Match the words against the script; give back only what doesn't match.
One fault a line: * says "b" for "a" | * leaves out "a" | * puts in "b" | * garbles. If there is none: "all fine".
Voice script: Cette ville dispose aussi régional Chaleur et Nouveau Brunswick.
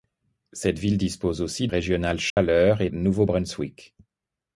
all fine